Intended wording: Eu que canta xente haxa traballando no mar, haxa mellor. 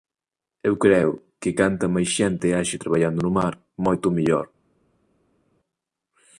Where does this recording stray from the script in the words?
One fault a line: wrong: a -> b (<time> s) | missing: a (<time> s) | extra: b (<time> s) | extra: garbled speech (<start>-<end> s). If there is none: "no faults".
extra: creo (0.8 s)
extra: máis (1.9 s)
wrong: haxa -> moito (3.8 s)